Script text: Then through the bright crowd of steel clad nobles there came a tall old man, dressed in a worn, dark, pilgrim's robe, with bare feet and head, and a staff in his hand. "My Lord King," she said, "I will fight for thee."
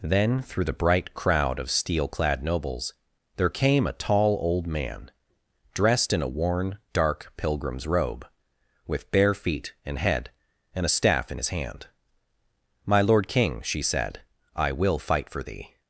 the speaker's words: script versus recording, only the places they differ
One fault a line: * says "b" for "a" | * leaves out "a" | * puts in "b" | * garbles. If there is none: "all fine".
all fine